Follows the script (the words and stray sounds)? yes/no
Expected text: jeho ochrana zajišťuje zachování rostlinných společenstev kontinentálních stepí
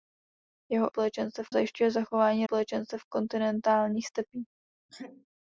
no